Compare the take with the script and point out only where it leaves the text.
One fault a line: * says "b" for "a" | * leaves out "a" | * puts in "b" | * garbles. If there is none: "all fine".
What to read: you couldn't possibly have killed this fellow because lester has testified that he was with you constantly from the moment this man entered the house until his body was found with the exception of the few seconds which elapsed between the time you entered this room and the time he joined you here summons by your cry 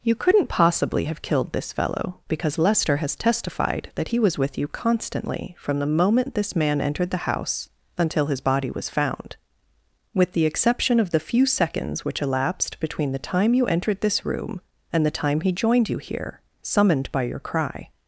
* says "summoned" for "summons"